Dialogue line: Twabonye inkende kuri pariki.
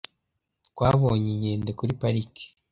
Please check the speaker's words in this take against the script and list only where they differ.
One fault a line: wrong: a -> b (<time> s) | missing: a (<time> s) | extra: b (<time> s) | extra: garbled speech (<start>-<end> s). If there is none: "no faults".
no faults